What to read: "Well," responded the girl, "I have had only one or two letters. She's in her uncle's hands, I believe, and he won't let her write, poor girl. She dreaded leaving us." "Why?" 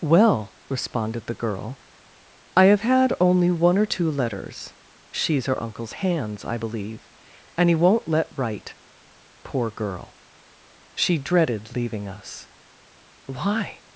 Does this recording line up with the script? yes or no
no